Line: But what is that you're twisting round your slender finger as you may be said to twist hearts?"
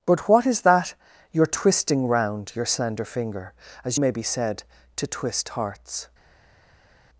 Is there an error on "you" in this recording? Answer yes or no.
yes